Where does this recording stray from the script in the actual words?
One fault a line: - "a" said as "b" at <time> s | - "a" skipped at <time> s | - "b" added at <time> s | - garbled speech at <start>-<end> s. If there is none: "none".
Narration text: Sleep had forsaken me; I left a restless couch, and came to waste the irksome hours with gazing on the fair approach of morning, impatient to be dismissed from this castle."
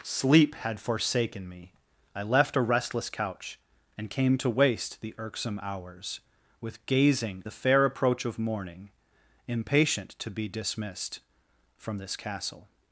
- "on" skipped at 7.4 s